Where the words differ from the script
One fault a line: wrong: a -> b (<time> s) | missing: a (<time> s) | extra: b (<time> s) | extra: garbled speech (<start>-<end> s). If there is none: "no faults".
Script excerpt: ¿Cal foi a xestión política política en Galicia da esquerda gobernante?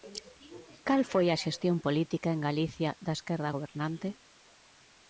missing: política (2.3 s)